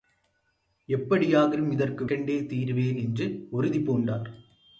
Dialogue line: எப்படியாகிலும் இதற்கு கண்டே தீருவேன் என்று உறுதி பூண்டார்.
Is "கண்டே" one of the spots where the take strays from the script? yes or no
no